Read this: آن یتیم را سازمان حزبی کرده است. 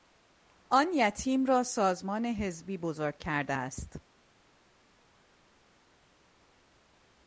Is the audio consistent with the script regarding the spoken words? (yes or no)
no